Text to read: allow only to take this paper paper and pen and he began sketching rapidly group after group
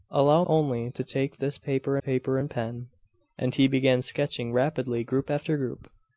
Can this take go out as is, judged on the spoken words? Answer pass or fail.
pass